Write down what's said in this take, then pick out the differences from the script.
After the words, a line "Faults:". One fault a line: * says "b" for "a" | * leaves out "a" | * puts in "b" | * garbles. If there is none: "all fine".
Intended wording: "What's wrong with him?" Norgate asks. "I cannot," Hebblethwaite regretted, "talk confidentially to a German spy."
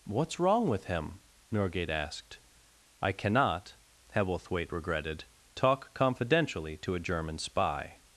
"What's wrong with him?" Norgate asked. "I cannot," Hebblethwaite regretted, "talk confidentially to a German spy."
Faults:
* says "asked" for "asks"